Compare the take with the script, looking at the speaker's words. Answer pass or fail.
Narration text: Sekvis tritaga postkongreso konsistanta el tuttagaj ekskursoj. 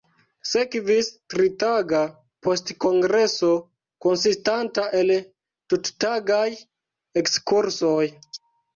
pass